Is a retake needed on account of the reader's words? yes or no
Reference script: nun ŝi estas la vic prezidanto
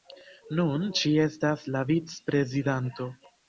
no